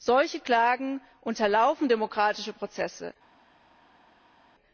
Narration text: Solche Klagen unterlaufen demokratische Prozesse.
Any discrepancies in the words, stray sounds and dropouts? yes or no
no